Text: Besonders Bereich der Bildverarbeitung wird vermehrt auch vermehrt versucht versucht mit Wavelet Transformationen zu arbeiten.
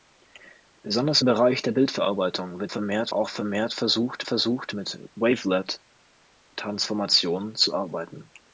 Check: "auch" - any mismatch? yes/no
no